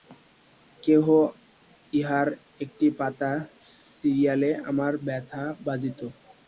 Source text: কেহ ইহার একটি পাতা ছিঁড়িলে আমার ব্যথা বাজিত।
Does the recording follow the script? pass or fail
pass